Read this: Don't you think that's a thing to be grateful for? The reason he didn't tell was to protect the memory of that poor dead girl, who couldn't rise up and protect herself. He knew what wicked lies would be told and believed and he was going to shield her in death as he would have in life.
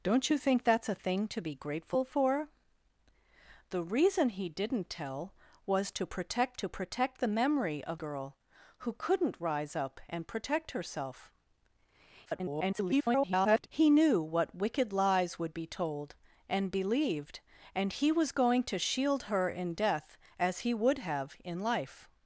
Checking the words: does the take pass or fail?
fail